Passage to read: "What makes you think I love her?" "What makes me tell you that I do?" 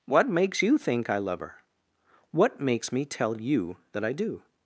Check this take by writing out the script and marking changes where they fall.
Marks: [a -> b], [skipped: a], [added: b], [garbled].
"What makes you think I love her?" "What makes me tell you that I do?"